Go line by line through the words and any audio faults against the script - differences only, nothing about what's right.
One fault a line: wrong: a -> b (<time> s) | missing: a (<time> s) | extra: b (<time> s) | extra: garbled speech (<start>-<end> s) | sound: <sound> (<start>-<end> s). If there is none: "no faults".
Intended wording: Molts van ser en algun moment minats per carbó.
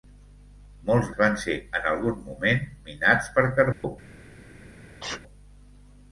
sound: dropout (3.7-3.8 s)
sound: sneeze (5.0-5.2 s)